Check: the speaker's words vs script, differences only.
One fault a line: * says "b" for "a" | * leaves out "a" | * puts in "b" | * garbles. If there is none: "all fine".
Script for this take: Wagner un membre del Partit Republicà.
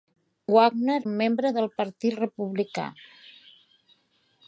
all fine